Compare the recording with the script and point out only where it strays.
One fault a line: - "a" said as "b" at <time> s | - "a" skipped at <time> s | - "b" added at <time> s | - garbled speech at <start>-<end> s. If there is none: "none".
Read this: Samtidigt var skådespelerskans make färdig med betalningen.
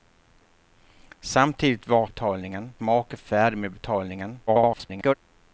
- "skådespelerskans" said as "betalningen" at 2.0 s
- garbled speech at 4.5-5.1 s